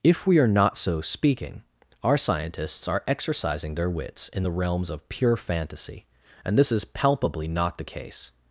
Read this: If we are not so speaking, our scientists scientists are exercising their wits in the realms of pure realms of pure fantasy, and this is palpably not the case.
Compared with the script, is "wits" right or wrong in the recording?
right